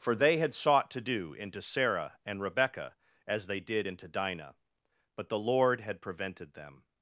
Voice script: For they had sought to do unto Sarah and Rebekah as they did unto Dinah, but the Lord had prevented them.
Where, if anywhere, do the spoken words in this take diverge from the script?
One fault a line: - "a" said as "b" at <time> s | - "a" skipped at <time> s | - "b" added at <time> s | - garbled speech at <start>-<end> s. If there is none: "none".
- "unto" said as "into" at 1.4 s
- "unto" said as "into" at 3.8 s